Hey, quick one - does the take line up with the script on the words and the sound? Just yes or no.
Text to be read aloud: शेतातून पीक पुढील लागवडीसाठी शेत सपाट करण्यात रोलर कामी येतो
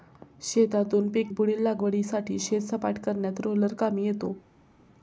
yes